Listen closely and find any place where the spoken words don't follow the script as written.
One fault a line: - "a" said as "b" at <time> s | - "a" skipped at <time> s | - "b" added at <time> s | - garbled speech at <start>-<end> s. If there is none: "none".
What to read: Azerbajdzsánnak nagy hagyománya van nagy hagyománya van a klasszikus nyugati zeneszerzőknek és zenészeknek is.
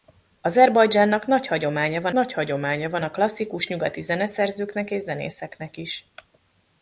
none